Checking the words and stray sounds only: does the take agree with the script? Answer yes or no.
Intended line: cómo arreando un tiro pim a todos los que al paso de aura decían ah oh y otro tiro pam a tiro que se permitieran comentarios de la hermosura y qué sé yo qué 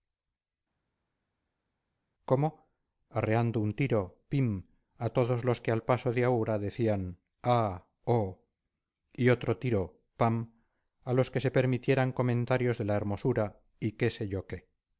no